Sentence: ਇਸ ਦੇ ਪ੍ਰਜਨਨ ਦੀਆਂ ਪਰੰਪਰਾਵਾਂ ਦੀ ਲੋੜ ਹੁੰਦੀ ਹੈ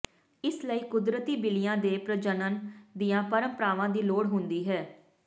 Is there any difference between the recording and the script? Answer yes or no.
yes